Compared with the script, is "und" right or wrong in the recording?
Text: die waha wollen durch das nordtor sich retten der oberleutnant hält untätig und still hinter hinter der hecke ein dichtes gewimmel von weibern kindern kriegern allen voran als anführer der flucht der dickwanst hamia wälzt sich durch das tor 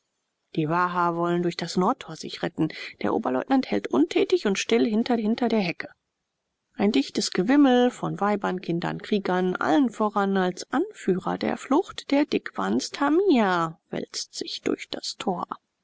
right